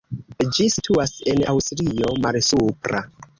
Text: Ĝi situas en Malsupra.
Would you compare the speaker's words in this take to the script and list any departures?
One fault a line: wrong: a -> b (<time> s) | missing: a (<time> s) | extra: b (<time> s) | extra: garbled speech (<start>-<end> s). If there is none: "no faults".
extra: Aŭstrio (1.5 s)